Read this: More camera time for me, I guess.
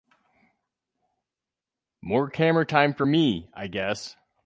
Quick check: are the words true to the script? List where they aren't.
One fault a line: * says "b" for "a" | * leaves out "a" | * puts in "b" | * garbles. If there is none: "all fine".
all fine